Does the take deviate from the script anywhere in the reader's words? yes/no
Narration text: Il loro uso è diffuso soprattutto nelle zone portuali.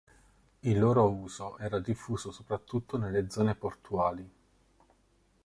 yes